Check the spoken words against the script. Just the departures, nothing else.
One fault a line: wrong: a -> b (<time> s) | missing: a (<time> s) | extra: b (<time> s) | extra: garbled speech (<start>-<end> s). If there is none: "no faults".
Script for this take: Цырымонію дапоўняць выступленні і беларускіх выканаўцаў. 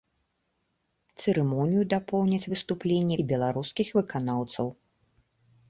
no faults